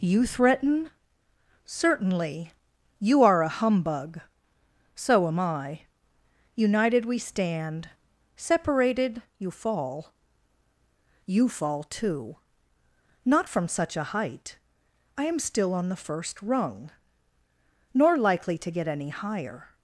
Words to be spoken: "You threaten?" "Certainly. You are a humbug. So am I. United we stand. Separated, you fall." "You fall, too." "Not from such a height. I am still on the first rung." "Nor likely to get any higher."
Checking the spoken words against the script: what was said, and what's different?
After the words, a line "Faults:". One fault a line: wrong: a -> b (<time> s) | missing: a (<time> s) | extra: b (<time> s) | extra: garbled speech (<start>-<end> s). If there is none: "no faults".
"You threaten?" "Certainly. You are a humbug. So am I. United we stand. Separated, you fall." "You fall, too." "Not from such a height. I am still on the first rung." "Nor likely to get any higher."
Faults:
no faults